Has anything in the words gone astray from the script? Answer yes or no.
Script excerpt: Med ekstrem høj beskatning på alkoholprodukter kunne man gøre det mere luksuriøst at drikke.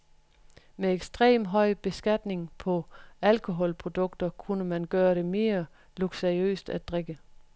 no